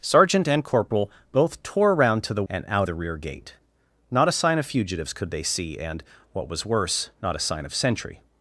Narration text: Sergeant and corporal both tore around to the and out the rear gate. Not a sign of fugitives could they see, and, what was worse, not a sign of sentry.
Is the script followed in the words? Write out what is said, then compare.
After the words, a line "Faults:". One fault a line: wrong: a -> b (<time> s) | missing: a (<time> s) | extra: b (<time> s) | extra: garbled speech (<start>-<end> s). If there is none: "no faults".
Sergeant and corporal both tore around to the and out the rear gate. Not a sign of fugitives could they see, and, what was worse, not a sign of sentry.
Faults:
no faults